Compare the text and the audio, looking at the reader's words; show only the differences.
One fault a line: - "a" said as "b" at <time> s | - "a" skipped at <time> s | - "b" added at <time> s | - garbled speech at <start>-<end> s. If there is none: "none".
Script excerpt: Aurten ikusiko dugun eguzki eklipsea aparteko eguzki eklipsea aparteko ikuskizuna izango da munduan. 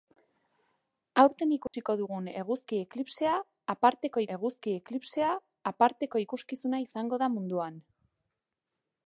none